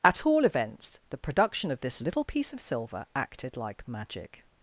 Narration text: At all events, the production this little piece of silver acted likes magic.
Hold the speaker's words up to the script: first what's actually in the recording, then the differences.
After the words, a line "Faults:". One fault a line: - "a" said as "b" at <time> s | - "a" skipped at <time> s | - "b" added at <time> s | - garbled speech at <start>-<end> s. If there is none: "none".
At all events, the production of this little piece of silver acted like magic.
Faults:
- "of" added at 1.7 s
- "likes" said as "like" at 3.6 s